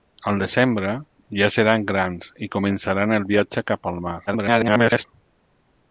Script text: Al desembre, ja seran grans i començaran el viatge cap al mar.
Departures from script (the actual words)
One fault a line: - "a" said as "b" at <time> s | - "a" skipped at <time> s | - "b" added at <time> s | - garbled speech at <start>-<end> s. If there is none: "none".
- garbled speech at 4.3-5.0 s